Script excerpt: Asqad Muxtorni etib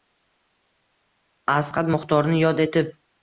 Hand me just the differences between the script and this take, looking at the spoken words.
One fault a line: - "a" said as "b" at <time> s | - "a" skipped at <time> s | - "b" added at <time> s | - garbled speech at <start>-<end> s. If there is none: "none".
- "yod" added at 2.4 s